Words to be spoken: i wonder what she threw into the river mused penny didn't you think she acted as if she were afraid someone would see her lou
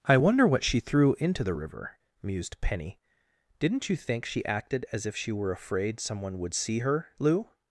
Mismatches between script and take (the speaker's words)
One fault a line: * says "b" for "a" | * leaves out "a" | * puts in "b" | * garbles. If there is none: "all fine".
all fine